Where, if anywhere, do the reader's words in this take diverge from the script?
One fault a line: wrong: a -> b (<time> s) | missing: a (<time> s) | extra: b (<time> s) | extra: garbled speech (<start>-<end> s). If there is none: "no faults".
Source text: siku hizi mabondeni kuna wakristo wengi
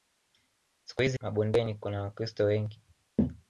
no faults